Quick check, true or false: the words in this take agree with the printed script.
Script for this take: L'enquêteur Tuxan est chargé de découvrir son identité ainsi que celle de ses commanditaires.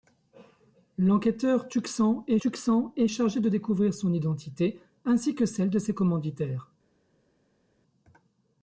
false